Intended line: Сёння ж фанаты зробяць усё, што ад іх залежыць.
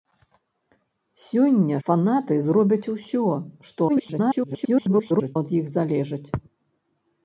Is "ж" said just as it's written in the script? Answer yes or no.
no